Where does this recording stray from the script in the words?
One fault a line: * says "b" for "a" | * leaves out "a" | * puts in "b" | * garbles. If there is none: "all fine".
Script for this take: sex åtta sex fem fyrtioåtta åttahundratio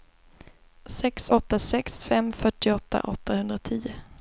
all fine